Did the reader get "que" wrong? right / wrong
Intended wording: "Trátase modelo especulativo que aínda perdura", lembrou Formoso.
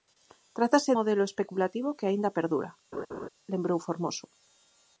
right